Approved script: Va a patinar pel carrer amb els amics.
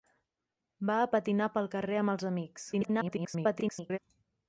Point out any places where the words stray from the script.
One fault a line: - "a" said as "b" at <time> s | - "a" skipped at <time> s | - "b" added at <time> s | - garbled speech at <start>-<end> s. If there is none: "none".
- garbled speech at 2.7-4.0 s